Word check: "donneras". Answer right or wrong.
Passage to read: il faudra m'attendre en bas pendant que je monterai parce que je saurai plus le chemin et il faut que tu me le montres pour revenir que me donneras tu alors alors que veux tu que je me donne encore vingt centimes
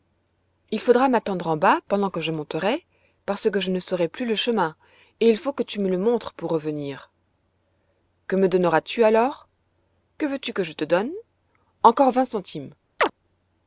right